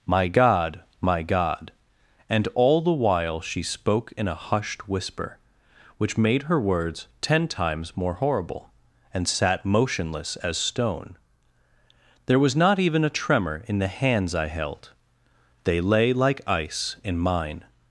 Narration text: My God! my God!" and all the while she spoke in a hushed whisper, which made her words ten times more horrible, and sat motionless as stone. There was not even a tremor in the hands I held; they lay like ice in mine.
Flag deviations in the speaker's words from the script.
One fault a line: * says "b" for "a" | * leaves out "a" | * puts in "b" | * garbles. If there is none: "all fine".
all fine